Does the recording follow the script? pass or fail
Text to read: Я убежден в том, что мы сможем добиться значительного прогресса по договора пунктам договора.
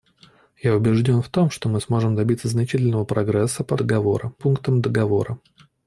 pass